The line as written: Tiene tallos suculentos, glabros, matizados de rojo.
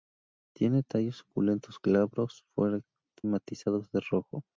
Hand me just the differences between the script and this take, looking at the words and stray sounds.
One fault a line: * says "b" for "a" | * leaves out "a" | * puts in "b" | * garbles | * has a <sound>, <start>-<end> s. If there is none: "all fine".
all fine